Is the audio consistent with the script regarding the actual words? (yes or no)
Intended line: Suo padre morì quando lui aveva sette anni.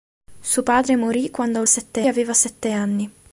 no